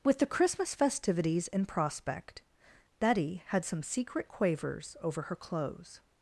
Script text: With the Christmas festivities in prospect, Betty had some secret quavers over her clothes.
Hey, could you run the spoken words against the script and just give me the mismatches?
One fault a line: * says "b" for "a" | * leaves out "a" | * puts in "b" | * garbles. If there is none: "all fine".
all fine